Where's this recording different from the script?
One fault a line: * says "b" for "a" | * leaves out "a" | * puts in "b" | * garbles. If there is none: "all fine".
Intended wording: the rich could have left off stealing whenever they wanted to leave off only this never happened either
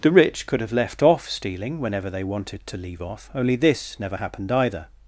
all fine